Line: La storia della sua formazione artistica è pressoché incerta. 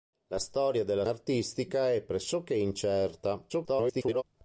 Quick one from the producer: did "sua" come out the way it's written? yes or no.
no